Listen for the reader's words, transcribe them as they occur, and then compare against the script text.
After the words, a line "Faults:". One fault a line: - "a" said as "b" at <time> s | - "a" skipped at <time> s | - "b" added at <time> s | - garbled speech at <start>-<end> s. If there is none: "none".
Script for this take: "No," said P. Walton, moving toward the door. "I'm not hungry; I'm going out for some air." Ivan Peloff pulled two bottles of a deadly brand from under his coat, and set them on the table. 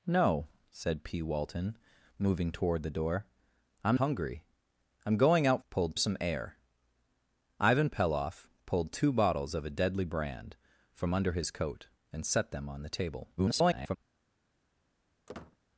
"No," said P. Walton, moving toward the door. "I'm hungry; I'm going out pulled some air." Ivan Peloff pulled two bottles of a deadly brand from under his coat, and set them on the table. [garbled]
Faults:
- "not" skipped at 4.0 s
- "for" said as "pulled" at 5.7 s
- garbled speech at 13.4-14.0 s